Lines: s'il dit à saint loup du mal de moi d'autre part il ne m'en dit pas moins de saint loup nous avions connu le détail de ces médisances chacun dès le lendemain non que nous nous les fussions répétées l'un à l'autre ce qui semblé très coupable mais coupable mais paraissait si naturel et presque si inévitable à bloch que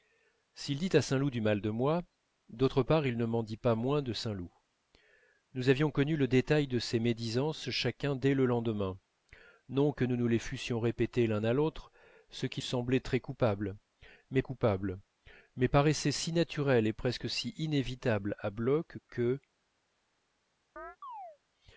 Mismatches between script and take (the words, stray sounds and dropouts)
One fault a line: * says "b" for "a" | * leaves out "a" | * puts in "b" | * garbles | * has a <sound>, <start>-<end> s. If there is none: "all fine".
* has a chirp, 20.8-21.4 s